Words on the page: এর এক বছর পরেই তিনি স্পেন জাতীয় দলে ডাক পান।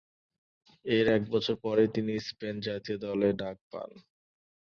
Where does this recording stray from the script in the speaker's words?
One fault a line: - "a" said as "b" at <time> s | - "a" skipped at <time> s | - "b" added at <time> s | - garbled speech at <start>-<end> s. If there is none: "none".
none